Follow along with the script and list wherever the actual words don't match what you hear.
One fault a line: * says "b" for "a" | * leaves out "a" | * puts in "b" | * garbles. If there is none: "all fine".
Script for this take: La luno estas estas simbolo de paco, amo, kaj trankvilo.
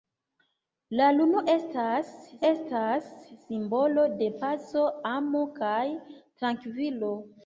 all fine